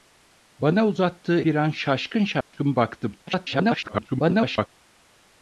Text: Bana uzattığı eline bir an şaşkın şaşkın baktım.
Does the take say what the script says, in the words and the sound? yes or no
no